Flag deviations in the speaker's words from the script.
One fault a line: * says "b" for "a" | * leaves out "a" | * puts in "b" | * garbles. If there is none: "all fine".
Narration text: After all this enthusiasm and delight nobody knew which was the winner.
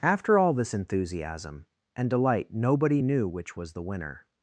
all fine